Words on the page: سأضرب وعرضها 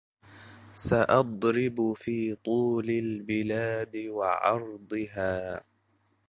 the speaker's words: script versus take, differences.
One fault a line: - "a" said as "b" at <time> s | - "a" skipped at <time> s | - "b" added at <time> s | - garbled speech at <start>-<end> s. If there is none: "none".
- "في طول البلاد" added at 1.9 s